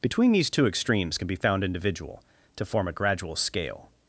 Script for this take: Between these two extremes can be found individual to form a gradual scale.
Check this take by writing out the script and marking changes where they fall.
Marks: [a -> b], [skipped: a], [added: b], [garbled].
Between these two extremes can be found individual to form a gradual scale.